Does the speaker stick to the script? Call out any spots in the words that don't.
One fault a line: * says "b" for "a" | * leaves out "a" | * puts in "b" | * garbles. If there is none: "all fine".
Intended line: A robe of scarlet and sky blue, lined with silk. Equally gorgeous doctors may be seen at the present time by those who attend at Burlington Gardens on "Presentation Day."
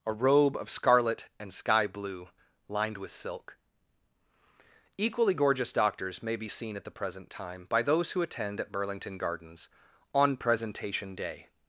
all fine